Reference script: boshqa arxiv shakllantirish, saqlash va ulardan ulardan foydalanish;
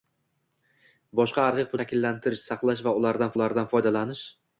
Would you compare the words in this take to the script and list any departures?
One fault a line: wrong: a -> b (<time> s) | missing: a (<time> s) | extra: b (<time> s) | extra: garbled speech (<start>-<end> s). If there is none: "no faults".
no faults